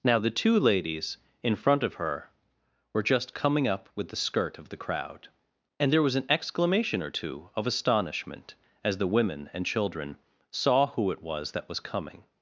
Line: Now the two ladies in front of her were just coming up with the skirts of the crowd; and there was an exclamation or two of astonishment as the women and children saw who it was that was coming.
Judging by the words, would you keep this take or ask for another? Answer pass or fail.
fail